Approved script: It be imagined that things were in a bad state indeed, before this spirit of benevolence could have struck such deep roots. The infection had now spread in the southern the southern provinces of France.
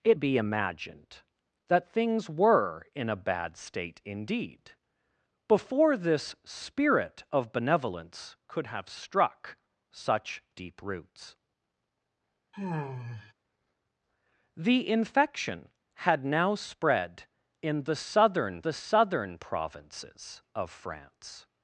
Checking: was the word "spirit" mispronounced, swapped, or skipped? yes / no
no